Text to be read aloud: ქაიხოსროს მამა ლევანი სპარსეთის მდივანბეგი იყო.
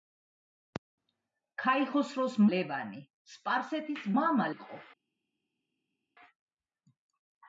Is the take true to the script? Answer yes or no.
no